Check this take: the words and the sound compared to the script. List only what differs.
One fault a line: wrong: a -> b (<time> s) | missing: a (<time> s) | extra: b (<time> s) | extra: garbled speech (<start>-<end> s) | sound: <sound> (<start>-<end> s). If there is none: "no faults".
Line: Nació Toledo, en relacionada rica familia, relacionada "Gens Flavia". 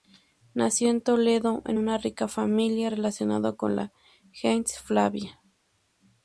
extra: en (0.9 s)
wrong: relacionada -> una (1.8 s)
extra: con la (3.5 s)